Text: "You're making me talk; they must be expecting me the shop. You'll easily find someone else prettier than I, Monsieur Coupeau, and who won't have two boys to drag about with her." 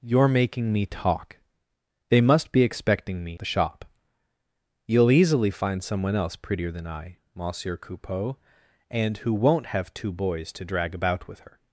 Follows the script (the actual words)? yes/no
yes